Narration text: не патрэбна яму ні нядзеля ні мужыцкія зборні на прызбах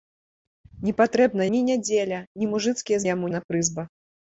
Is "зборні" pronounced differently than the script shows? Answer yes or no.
yes